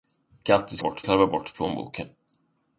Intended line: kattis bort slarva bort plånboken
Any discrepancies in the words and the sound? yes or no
no